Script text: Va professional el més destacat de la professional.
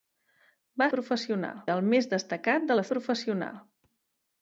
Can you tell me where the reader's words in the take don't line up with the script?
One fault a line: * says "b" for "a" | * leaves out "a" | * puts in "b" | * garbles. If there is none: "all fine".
all fine